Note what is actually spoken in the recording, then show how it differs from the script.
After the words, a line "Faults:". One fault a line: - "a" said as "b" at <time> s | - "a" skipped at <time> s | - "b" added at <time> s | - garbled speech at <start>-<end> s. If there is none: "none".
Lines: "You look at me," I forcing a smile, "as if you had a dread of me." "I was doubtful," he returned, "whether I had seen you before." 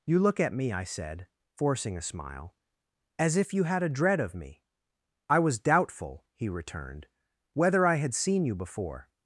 "You look at me," I said, forcing a smile, "as if you had a dread of me." "I was doubtful," he returned, "whether I had seen you before."
Faults:
- "said" added at 0.8 s